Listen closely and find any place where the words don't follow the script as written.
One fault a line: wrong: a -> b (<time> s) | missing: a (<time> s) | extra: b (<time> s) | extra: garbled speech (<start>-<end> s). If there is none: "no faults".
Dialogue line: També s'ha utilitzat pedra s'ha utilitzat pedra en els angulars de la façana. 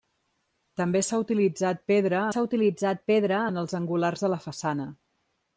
no faults